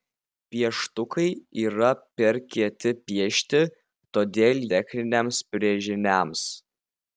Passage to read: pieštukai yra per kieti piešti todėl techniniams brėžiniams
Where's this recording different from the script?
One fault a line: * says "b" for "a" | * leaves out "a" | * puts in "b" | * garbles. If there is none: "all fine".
all fine